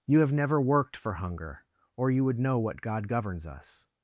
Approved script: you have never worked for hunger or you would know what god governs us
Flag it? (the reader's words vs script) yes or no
no